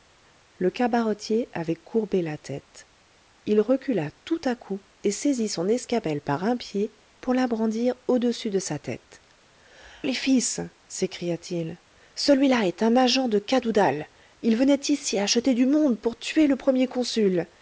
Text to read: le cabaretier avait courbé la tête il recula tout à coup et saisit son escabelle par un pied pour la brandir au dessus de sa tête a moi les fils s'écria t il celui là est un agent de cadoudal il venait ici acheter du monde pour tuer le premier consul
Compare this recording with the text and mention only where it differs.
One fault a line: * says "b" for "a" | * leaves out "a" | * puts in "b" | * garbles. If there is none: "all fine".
* leaves out "a moi"